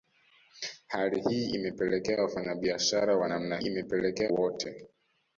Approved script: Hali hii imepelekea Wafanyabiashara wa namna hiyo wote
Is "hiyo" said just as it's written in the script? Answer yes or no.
no